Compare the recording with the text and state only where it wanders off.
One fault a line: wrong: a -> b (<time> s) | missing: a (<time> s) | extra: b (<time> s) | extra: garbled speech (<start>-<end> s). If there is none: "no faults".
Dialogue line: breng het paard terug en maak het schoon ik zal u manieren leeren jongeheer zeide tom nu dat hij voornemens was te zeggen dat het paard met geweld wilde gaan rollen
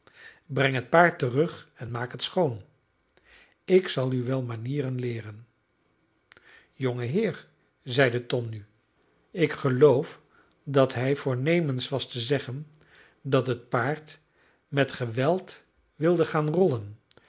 extra: wel (4.2 s)
extra: ik geloof (9.3 s)